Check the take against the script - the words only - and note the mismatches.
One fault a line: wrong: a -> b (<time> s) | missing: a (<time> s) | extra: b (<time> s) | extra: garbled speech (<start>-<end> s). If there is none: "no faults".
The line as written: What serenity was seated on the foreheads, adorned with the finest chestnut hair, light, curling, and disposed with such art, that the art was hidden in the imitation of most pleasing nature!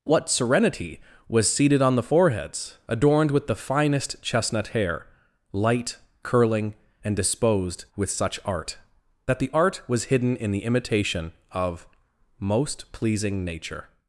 no faults